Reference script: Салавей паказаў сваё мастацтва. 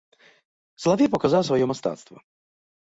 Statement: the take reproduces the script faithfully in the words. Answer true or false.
true